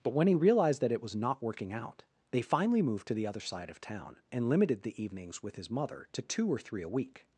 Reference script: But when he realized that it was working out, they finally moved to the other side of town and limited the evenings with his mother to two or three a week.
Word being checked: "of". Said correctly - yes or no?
yes